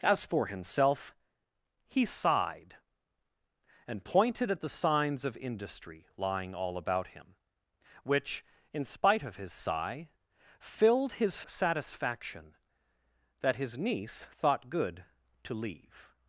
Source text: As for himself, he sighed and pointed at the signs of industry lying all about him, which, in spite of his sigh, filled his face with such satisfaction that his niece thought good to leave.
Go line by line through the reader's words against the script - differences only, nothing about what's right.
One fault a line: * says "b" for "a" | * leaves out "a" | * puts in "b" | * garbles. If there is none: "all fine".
* leaves out "face with such"